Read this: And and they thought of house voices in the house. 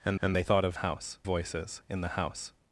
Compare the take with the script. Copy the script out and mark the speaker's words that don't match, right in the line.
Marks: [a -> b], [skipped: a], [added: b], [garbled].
And and they thought of house voices in the house.